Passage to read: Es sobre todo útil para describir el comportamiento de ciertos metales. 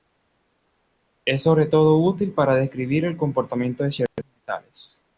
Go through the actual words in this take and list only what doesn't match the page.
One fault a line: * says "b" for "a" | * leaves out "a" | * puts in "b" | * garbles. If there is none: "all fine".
all fine